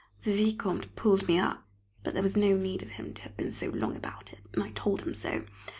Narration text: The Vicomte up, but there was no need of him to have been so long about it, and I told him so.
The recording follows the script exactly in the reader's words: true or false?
false